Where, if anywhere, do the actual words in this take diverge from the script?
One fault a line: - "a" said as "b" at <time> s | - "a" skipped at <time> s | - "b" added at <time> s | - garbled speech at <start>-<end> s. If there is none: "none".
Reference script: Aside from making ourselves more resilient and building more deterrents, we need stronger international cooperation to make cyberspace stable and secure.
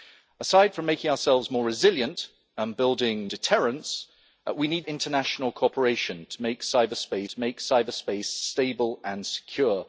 - "more" skipped at 3.3 s
- "stronger" skipped at 4.9 s
- "to make cyberspace" added at 7.2 s